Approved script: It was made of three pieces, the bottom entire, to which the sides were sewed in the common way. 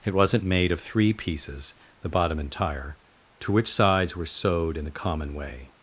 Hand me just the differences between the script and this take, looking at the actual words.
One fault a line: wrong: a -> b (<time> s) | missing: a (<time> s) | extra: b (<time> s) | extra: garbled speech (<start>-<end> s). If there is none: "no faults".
wrong: was -> wasn't (0.1 s)
missing: the (3.7 s)